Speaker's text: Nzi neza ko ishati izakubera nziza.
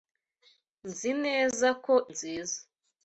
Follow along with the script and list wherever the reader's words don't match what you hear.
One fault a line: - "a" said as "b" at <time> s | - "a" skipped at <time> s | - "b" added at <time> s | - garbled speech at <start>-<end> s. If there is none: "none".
- "ishati izakubera" skipped at 1.9 s